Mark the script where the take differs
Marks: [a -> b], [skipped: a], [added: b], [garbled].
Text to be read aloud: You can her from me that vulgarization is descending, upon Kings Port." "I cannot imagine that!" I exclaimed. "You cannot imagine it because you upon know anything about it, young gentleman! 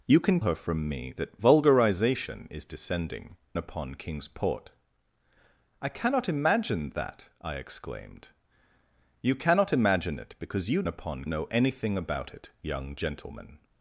You can her from me that vulgarization is descending, upon Kings Port." "I cannot imagine that!" I exclaimed. "You cannot imagine it because you upon know anything about it, young gentleman!